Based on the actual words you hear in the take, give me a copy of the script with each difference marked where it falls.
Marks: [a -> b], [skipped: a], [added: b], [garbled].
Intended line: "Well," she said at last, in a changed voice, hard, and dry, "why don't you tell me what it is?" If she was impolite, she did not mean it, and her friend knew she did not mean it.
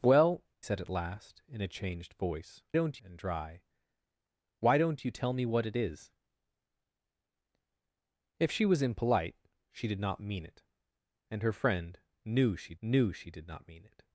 "Well," [skipped: she] said at last, in a changed voice, [hard, -> don't] and dry, "why don't you tell me what it is?" If she was impolite, she did not mean it, and her friend knew she [added: knew she] did not mean it.